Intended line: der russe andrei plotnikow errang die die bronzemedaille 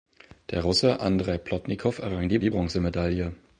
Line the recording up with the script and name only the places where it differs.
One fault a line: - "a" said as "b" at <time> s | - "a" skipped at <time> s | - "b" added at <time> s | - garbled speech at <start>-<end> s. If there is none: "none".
none